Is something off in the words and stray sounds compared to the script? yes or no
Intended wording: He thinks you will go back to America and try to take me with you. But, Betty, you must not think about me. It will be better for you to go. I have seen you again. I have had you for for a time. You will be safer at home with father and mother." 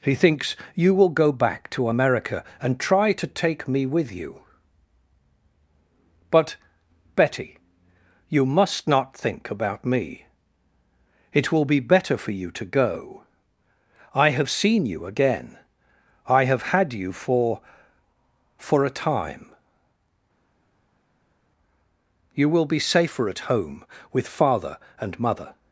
no